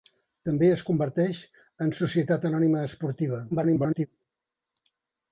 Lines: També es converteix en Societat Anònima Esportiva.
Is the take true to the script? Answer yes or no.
no